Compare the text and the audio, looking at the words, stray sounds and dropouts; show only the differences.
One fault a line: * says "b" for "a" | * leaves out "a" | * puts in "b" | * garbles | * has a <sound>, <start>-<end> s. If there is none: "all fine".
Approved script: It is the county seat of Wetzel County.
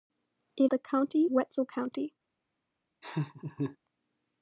* leaves out "is"
* leaves out "seat of"
* has a laugh, 3.0-3.8 s